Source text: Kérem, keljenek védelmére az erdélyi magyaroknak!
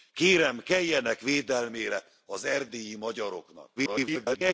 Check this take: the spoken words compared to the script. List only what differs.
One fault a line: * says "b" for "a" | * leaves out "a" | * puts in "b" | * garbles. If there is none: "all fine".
* garbles